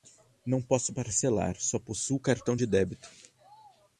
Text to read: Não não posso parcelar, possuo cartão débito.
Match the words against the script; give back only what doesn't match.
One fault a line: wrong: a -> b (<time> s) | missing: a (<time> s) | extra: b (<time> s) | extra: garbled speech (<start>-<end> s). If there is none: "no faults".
missing: não (0.6 s)
extra: só (1.6 s)
extra: de (2.5 s)